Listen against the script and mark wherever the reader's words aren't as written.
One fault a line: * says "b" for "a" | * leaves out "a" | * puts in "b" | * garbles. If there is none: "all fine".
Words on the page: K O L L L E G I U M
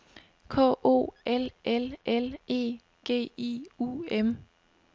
all fine